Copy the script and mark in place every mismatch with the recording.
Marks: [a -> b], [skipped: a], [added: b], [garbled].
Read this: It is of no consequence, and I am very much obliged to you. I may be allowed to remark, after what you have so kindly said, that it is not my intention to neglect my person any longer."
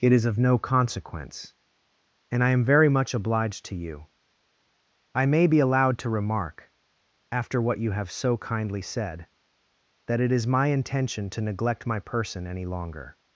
It is of no consequence, and I am very much obliged to you. I may be allowed to remark, after what you have so kindly said, that it is [skipped: not] my intention to neglect my person any longer."